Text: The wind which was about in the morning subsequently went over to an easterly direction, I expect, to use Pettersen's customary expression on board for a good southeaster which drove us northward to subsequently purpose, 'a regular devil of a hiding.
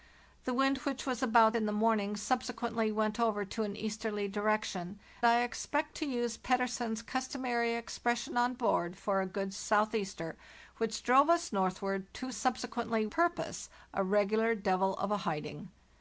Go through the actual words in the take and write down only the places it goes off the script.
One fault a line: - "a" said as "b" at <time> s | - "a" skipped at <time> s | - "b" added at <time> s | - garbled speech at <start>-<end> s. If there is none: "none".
none